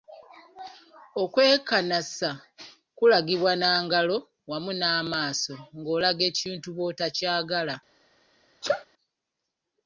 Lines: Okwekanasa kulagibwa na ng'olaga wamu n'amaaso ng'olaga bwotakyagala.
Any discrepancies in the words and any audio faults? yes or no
yes